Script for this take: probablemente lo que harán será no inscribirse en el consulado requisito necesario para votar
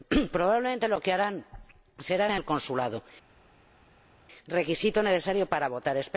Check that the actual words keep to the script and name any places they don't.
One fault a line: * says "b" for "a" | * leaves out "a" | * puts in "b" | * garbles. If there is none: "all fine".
* leaves out "no inscribirse"